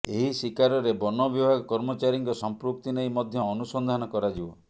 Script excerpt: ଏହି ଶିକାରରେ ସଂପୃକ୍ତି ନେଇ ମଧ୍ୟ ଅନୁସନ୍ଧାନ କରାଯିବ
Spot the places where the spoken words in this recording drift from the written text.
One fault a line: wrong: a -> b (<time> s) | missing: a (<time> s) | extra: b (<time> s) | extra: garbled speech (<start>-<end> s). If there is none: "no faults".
extra: ବନ ବିଭାଗ କର୍ମଚାରୀଙ୍କ (1.0 s)